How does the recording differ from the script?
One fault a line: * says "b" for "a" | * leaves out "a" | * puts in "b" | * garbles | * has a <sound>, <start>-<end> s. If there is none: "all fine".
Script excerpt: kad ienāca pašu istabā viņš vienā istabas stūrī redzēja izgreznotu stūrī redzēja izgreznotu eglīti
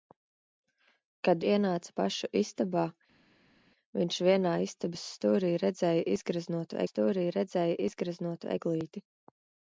all fine